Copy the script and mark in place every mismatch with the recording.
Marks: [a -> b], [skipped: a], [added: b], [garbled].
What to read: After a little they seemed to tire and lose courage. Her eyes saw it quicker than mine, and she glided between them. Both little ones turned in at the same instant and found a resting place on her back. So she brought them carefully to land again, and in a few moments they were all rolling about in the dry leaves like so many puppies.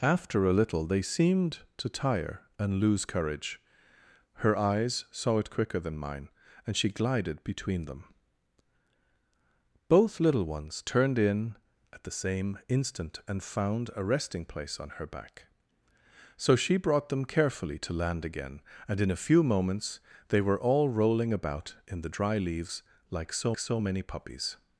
After a little they seemed to tire and lose courage. Her eyes saw it quicker than mine, and she glided between them. Both little ones turned in at the same instant and found a resting place on her back. So she brought them carefully to land again, and in a few moments they were all rolling about in the dry leaves like so [added: so] many puppies.